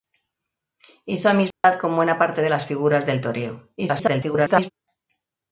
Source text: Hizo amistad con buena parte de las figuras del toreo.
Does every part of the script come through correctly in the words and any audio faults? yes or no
no